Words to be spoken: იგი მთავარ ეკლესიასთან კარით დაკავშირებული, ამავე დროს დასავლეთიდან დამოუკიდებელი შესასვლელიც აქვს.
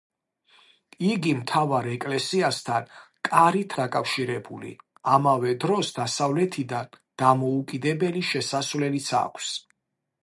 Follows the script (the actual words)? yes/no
yes